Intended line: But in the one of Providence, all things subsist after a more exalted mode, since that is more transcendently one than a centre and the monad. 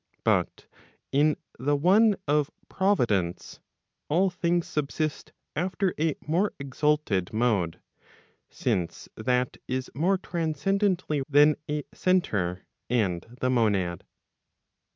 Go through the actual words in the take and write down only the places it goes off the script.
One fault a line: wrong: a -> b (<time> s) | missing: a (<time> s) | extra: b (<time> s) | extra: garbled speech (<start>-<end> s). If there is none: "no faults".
missing: one (11.2 s)